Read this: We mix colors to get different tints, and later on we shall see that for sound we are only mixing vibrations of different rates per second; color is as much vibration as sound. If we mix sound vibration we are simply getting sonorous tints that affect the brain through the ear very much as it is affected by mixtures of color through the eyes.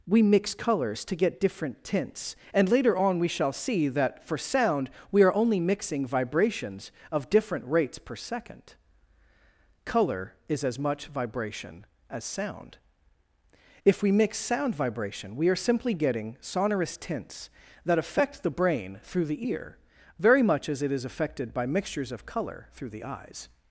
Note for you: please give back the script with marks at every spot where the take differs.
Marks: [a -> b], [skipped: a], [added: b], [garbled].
We mix colors to get different tints, and later on we shall see that for sound we are only mixing vibrations of different rates per second; color is as much vibration as sound. If we mix sound vibration we are simply getting sonorous tints that affect the brain through the ear very much as it is affected by mixtures of color through the eyes.